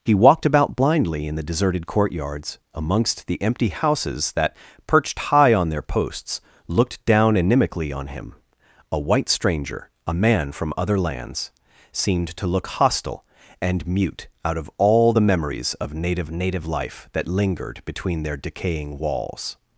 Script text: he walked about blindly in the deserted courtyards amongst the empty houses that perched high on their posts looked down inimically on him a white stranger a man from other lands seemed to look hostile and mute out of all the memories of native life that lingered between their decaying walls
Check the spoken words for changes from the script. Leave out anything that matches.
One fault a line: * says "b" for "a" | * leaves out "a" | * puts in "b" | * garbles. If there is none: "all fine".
* puts in "native"